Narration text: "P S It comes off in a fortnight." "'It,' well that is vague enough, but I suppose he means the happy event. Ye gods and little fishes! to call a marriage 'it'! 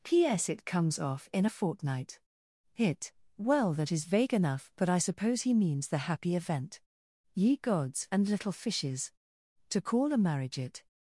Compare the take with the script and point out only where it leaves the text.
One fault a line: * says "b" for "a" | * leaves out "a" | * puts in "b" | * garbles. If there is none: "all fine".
* says "Hit" for "It"